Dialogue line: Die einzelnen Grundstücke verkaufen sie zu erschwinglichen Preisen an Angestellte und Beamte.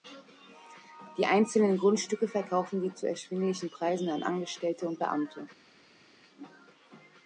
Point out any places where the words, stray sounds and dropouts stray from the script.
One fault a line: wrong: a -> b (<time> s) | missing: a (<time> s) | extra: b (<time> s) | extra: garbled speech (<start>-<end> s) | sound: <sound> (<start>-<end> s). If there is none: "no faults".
no faults